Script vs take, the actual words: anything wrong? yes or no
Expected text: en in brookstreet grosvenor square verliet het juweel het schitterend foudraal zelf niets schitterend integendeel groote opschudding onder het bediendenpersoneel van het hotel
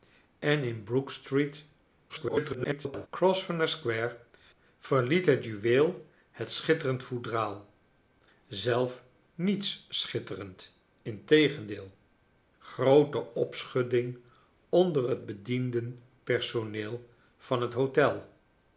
yes